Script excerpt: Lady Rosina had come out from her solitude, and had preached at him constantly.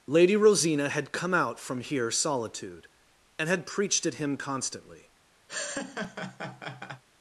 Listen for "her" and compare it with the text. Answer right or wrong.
wrong